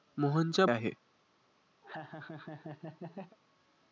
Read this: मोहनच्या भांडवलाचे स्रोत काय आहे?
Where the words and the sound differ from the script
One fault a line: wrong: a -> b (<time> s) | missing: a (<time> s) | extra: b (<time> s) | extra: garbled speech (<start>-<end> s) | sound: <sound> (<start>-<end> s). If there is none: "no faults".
missing: भांडवलाचे स्रोत काय (0.7 s)
sound: laugh (1.8-3.4 s)